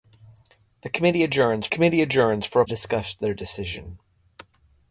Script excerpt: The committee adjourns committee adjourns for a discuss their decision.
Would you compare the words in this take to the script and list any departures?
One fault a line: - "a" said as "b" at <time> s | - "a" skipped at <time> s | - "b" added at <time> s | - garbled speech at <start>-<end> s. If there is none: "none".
none